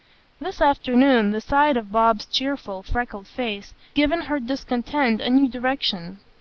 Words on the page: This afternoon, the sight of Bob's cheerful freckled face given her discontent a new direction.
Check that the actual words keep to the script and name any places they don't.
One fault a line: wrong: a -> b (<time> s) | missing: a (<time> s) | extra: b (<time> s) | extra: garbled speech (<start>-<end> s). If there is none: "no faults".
no faults